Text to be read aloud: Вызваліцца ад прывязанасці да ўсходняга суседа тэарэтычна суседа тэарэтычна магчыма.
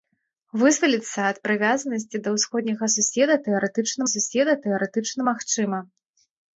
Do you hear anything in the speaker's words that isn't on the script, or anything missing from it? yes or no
no